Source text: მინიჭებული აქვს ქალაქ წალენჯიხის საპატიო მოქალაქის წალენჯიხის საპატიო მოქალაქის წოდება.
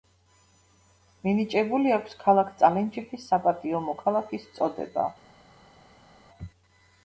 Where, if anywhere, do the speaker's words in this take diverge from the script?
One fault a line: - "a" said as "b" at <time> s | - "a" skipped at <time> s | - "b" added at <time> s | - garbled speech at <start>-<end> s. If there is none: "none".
- "წალენჯიხის საპატიო მოქალაქის" skipped at 4.5 s